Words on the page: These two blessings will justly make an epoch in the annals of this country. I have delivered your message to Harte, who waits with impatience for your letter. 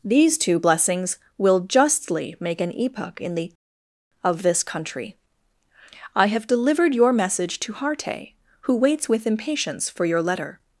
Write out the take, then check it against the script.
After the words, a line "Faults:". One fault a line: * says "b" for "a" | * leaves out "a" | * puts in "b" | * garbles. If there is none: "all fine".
These two blessings will justly make an epoch in the of this country. I have delivered your message to Harte, who waits with impatience for your letter.
Faults:
* leaves out "annals"